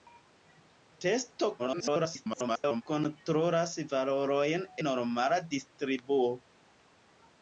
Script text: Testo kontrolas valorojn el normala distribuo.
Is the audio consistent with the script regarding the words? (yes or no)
no